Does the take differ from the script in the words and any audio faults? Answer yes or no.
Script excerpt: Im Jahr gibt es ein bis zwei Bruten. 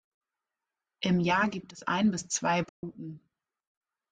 yes